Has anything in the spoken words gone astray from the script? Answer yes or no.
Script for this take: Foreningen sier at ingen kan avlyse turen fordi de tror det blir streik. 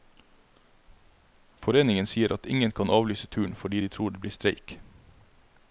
no